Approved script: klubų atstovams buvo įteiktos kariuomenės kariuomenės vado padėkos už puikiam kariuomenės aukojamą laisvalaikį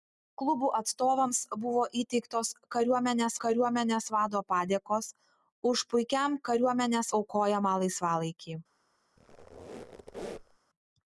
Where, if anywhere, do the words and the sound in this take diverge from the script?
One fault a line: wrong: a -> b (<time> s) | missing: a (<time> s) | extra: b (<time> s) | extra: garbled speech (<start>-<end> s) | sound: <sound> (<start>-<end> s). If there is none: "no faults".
sound: squeak (9.2-10.6 s)